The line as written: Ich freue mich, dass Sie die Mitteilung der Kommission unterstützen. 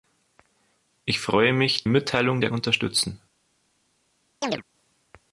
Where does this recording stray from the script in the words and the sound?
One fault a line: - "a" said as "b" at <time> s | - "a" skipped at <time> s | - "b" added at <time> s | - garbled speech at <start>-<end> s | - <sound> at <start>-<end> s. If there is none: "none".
- "dass Sie die" skipped at 1.9 s
- "Kommission" skipped at 2.5 s
- chirp at 4.4-4.6 s